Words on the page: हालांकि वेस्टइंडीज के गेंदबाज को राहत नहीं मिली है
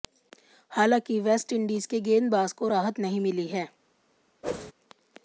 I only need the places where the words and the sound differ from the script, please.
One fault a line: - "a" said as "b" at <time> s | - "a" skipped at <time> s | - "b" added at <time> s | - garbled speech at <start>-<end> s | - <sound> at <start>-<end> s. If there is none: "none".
- whoosh at 4.4-4.7 s